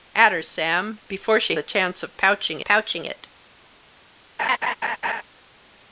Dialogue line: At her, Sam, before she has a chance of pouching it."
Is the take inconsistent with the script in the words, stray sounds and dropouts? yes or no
yes